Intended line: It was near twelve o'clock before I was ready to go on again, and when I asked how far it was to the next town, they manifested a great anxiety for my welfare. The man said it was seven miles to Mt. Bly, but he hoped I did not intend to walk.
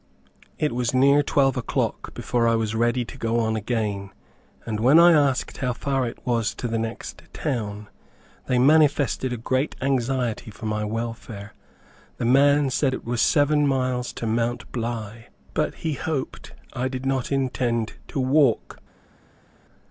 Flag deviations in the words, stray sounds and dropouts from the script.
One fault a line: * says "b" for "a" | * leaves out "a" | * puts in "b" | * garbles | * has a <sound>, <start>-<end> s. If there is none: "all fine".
all fine